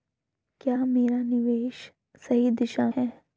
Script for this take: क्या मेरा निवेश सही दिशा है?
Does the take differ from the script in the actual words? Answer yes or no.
no